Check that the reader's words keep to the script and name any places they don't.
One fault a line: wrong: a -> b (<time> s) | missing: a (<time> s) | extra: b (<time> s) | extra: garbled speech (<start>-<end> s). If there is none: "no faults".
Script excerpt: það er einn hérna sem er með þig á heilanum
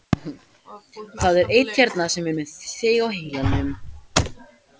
no faults